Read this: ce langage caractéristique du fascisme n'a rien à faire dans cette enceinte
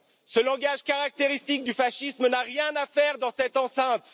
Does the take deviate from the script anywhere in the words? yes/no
no